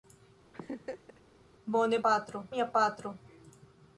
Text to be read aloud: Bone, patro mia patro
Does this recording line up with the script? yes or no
yes